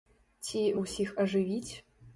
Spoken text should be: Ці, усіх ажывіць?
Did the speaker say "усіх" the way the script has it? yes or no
yes